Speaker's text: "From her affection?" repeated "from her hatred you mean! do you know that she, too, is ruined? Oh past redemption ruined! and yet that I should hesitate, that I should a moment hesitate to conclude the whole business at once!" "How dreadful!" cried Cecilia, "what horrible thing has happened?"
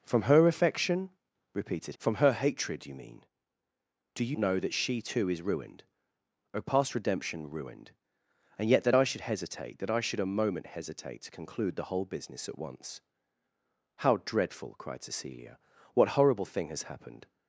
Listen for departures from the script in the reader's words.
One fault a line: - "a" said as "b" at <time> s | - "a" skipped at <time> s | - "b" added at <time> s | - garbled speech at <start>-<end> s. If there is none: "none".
none